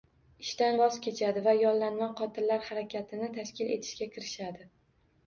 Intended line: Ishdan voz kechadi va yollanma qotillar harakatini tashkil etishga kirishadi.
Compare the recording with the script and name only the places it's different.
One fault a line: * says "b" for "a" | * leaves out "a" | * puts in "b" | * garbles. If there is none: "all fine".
all fine